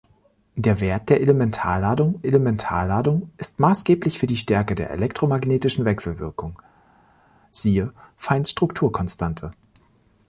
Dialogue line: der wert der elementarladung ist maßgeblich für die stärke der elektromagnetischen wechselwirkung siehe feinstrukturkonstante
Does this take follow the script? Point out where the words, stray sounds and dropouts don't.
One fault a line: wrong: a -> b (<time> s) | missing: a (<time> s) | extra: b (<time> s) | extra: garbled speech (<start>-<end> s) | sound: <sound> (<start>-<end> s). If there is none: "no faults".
extra: elementarladung (2.3 s)